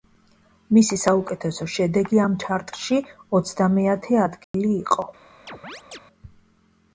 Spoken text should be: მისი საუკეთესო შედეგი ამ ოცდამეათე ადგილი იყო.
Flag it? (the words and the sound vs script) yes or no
yes